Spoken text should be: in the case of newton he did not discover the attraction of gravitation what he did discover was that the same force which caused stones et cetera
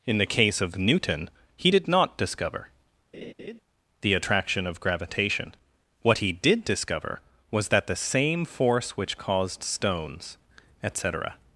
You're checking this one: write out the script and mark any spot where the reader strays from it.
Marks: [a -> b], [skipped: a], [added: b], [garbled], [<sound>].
in the case of newton he did not discover [laugh] the attraction of gravitation what he did discover was that the same force which caused stones et cetera